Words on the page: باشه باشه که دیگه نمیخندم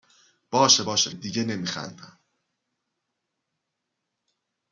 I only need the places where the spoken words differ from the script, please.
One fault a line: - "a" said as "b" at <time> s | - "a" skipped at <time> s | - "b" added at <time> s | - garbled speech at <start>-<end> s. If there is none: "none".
- "که" skipped at 1.1 s